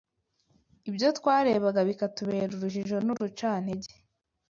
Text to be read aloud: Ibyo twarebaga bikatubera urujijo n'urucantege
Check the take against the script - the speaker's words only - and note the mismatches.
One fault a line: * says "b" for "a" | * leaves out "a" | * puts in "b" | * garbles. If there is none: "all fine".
all fine